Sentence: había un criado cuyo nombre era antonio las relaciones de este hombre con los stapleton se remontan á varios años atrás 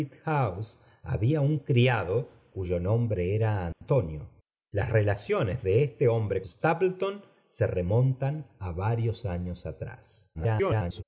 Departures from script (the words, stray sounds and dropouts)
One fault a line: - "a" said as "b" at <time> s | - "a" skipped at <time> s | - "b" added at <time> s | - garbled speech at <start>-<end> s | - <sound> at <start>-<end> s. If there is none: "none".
- dropout at 3.7-3.8 s
- "con los" skipped at 6.4 s
- garbled speech at 10.3-11.0 s